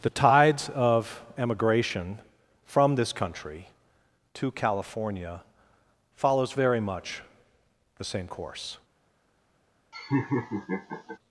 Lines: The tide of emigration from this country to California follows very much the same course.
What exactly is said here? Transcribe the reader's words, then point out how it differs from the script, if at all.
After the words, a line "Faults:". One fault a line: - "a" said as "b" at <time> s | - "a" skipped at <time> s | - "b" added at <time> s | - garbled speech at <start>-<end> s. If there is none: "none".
The tides of emigration from this country to California follows very much the same course.
Faults:
- "tide" said as "tides" at 0.1 s